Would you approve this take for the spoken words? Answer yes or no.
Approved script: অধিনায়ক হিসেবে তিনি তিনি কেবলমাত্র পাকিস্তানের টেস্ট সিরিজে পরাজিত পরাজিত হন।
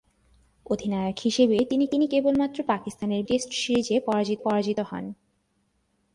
yes